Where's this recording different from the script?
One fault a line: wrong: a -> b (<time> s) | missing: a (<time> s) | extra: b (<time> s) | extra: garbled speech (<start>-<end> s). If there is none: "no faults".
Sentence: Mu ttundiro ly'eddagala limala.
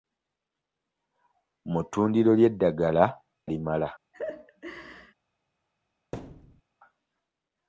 no faults